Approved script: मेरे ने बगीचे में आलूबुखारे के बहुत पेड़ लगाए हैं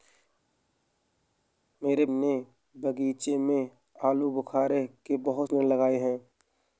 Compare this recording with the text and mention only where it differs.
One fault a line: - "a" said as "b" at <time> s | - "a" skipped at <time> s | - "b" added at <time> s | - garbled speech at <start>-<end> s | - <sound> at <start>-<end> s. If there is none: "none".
none